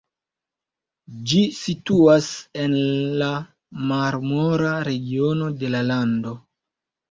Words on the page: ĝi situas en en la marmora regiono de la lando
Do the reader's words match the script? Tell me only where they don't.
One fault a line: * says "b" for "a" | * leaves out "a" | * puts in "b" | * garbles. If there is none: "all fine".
* leaves out "en"